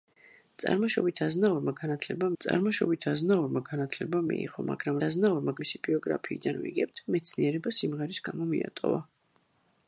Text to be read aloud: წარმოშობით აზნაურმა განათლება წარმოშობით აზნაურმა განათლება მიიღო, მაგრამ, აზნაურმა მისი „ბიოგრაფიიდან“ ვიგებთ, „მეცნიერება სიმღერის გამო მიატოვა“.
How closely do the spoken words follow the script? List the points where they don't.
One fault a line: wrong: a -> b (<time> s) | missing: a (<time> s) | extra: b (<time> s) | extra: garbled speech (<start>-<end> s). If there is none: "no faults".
no faults